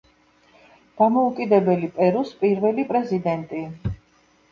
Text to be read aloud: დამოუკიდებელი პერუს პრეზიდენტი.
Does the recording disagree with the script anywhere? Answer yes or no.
yes